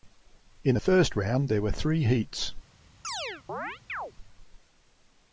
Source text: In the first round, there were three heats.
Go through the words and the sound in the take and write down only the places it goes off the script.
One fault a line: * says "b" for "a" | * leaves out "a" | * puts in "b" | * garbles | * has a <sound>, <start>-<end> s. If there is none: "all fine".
* has a chirp, 3.0-4.1 s